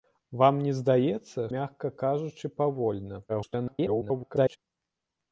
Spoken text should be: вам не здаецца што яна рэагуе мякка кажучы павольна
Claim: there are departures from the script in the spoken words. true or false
true